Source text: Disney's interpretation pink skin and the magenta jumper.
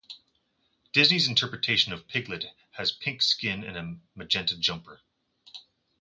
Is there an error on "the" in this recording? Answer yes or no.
yes